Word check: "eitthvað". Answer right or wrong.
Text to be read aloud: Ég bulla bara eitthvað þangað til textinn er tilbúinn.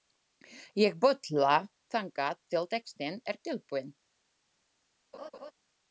wrong